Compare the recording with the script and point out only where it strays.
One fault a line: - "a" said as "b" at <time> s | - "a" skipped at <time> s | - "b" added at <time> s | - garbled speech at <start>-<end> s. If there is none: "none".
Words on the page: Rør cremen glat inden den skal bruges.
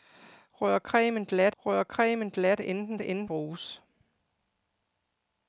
- "rør cremen glat" added at 1.6 s
- "skal" said as "inden" at 3.0 s